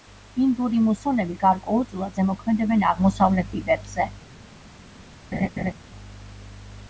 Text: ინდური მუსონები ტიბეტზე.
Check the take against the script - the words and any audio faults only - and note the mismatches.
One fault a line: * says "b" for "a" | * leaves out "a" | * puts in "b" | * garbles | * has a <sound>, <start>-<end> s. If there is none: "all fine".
* puts in "გარკვეულწილად ზემოქმედებენ აღმოსავლეთ"
* has a laugh, 5.3-5.7 s